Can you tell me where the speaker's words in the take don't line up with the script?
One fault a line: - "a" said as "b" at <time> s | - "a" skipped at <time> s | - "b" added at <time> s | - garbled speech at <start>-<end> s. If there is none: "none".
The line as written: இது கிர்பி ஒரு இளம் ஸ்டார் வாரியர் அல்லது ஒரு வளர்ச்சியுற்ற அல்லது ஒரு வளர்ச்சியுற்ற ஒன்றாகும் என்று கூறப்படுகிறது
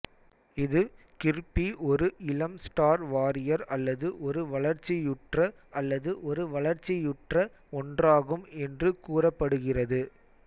none